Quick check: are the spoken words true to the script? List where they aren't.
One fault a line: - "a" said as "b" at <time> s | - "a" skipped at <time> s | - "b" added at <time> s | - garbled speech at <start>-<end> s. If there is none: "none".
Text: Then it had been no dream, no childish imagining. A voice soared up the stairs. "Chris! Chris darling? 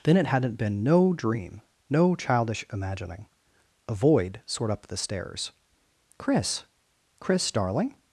- "had" said as "hadn't" at 0.3 s
- "voice" said as "void" at 3.9 s